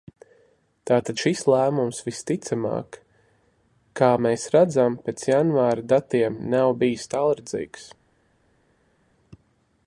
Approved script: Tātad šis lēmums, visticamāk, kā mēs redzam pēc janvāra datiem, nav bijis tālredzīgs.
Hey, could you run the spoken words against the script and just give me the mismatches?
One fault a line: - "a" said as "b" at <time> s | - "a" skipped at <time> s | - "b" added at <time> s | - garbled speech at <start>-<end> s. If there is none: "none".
none